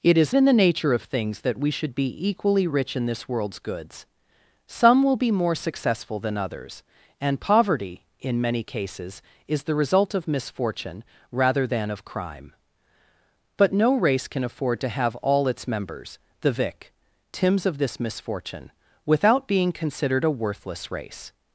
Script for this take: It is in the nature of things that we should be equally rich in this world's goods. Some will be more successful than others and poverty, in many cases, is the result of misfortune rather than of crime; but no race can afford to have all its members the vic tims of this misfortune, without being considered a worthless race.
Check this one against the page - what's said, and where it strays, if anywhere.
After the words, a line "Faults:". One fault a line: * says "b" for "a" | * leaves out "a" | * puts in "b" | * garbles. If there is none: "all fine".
It is in the nature of things that we should be equally rich in this world's goods. Some will be more successful than others and poverty, in many cases, is the result of misfortune rather than of crime; but no race can afford to have all its members the vic tims of this misfortune, without being considered a worthless race.
Faults:
all fine